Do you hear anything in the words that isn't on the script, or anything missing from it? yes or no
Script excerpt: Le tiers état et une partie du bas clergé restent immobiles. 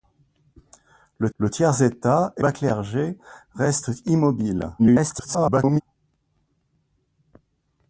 yes